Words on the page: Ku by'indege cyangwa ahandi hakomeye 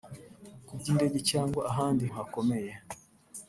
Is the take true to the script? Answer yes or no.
yes